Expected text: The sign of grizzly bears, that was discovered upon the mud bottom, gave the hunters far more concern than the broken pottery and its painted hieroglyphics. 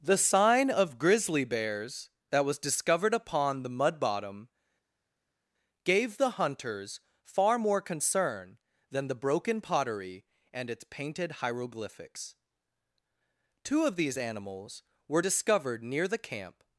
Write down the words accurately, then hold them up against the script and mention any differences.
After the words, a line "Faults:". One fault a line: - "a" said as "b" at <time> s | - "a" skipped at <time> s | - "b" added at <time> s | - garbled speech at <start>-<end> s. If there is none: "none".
The sign of grizzly bears, that was discovered upon the mud bottom, gave the hunters far more concern than the broken pottery and its painted hieroglyphics. Two of these animals were discovered near the camp
Faults:
- "Two of these animals were discovered near the camp" added at 13.6 s